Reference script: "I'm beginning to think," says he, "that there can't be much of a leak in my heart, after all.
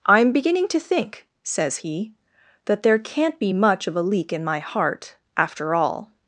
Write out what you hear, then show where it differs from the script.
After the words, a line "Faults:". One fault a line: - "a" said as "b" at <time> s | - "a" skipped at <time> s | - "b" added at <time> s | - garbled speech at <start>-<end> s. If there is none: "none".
"I'm beginning to think," says he, "that there can't be much of a leak in my heart, after all.
Faults:
none